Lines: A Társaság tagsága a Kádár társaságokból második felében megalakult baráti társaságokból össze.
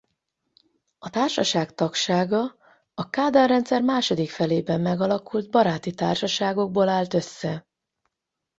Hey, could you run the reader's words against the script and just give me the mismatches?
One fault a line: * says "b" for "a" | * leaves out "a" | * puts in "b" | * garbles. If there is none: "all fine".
* says "rendszer" for "társaságokból"
* puts in "állt"